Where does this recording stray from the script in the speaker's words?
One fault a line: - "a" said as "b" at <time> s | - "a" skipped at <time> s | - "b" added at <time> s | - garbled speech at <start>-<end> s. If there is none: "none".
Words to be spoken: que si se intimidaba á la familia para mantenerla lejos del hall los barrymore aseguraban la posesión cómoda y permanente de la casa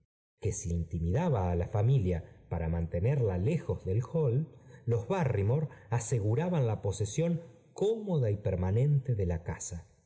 - "se" skipped at 0.7 s